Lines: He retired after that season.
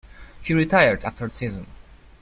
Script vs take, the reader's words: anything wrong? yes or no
yes